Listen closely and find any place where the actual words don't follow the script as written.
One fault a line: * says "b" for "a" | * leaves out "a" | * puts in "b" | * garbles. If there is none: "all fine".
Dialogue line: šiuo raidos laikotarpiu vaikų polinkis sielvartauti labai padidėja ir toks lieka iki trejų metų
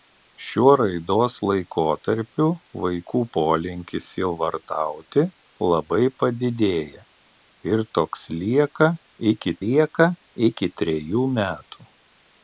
* puts in "lieka iki"